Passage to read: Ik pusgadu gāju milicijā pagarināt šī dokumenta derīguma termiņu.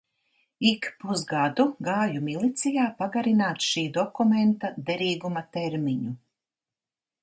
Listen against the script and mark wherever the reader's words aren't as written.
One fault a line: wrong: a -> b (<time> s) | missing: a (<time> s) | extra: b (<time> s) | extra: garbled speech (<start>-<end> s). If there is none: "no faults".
no faults